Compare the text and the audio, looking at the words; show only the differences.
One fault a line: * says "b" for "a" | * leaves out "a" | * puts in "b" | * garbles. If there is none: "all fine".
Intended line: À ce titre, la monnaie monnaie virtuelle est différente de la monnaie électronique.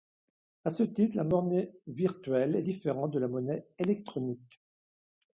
* leaves out "monnaie"